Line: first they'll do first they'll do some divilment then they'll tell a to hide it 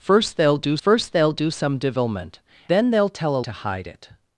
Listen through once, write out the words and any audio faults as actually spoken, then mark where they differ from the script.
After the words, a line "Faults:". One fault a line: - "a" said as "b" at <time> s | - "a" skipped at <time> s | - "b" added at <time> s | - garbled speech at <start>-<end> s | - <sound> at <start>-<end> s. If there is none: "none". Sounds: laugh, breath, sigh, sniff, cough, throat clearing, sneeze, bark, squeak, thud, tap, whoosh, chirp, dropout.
first they'll do first they'll do some divilment then they'll tell a to hide it
Faults:
none